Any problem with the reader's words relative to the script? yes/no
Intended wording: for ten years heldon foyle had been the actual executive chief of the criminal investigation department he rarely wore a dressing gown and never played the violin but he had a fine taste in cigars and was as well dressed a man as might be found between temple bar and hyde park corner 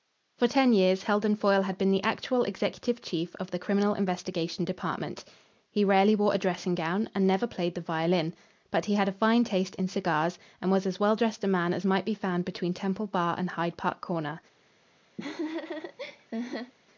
no